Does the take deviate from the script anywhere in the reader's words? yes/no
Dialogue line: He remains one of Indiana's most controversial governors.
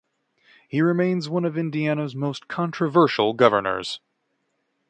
no